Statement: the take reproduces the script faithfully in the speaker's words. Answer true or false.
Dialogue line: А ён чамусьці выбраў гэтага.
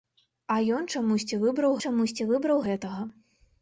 false